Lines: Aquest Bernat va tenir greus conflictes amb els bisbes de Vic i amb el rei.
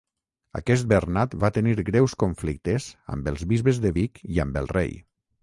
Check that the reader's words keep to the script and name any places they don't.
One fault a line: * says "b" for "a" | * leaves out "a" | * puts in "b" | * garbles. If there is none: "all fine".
all fine